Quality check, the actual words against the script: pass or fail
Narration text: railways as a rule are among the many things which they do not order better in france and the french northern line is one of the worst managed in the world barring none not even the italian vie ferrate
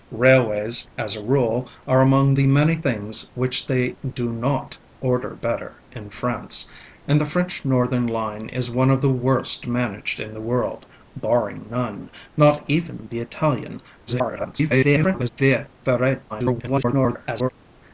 fail